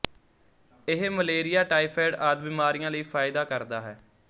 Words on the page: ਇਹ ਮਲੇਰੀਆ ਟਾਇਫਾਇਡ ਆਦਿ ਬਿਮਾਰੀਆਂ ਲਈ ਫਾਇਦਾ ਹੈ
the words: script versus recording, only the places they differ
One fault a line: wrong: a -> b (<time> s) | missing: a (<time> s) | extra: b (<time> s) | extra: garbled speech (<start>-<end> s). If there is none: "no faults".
extra: ਕਰਦਾ (3.4 s)